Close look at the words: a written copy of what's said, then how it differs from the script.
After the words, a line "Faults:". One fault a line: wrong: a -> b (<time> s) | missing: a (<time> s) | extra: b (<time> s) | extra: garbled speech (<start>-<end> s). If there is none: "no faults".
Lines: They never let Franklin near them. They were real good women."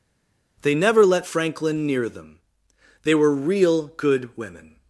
They never let Franklin near them. They were real good women."
Faults:
no faults